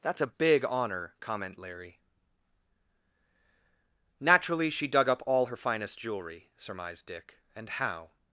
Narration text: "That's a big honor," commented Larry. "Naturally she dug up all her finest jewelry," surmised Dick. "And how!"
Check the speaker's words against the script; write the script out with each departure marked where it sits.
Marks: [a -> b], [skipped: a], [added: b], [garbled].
"That's a big honor," [commented -> comment] Larry. "Naturally she dug up all her finest jewelry," surmised Dick. "And how!"